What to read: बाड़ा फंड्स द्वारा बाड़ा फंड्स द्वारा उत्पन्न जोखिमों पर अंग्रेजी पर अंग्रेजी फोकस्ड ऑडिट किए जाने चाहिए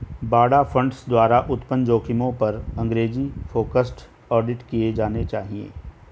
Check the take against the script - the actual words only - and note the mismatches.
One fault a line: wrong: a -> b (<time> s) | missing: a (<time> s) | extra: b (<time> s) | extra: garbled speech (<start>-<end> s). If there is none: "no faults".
missing: बाड़ा फंड्स द्वारा (1.4 s)
missing: पर अंग्रेजी (3.3 s)